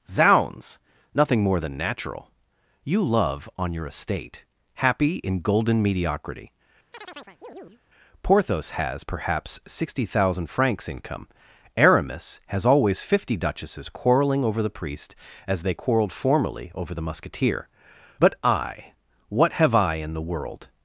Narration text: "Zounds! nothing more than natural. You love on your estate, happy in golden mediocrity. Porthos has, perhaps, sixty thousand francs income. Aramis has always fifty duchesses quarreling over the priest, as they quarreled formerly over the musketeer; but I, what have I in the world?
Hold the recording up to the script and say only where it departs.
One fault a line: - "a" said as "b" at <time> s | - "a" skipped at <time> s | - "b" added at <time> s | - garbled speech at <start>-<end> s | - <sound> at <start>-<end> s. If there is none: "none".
- chirp at 6.9-7.8 s